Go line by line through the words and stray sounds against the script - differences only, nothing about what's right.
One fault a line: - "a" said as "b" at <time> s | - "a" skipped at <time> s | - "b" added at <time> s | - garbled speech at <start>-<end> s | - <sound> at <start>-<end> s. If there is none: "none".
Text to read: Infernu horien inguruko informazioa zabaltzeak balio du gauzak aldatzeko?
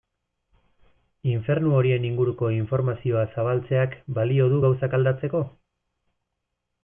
none